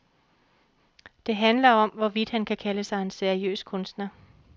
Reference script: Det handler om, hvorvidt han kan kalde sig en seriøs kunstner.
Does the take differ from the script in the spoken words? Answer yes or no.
no